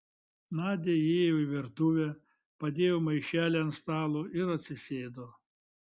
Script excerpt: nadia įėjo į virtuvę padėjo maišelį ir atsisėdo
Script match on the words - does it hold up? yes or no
no